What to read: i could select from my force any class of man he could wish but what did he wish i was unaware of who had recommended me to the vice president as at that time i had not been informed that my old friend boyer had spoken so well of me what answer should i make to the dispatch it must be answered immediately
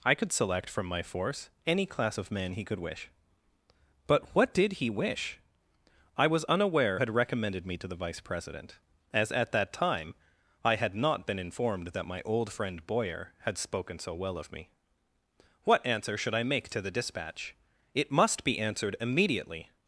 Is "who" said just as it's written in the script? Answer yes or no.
no